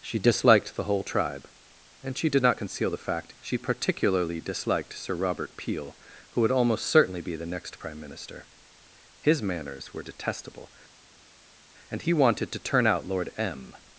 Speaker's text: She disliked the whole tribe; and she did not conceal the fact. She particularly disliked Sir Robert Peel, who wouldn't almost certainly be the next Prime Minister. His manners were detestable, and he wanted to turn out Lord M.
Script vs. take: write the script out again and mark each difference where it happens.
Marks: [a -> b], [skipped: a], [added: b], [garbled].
She disliked the whole tribe; and she did not conceal the fact. She particularly disliked Sir Robert Peel, who [wouldn't -> would] almost certainly be the next Prime Minister. His manners were detestable, and he wanted to turn out Lord M.